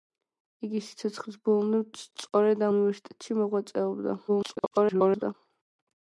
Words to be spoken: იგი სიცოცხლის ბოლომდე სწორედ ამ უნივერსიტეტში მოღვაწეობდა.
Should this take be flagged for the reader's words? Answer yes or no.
yes